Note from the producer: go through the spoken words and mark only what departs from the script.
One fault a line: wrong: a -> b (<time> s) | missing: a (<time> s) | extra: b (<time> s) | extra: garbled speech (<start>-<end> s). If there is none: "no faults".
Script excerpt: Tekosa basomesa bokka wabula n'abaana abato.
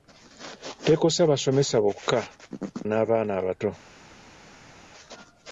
missing: wabula (2.2 s)